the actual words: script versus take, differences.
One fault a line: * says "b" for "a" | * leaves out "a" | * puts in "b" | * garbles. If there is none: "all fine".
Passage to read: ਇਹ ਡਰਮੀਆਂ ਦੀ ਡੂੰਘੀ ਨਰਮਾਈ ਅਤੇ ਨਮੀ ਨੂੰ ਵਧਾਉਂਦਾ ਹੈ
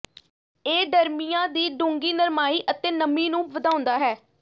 all fine